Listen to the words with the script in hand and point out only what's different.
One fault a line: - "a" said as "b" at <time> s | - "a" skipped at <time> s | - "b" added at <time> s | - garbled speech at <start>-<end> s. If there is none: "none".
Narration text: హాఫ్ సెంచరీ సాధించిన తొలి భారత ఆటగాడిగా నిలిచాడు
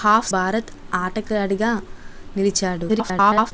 - "సెంచరీ సాధించిన తొలి" skipped at 0.3 s
- garbled speech at 2.9-3.5 s